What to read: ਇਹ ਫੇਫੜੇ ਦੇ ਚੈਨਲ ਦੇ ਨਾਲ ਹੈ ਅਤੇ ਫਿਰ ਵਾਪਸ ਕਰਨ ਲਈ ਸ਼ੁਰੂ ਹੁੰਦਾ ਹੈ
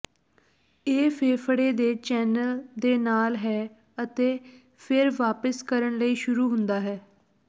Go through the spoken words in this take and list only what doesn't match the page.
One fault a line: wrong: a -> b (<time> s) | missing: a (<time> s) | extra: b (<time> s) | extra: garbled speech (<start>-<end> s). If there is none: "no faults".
no faults